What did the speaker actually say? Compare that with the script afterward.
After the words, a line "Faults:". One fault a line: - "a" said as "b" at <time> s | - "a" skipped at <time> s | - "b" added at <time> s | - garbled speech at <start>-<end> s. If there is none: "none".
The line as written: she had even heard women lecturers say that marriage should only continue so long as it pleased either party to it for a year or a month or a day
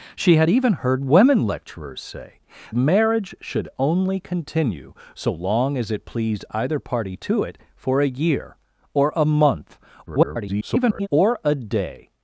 she had even heard women lecturers say marriage should only continue so long as it pleased either party to it for a year or a month [garbled] or a day
Faults:
- "that" skipped at 2.4 s
- garbled speech at 10.1-11.1 s